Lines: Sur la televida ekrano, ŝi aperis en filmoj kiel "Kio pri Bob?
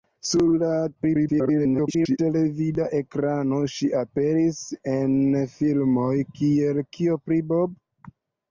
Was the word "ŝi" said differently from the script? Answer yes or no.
no